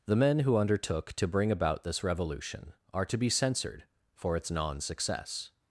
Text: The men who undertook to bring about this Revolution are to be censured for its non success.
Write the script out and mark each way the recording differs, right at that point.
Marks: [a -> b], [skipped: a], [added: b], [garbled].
The men who undertook to bring about this Revolution are to be censured for its non success.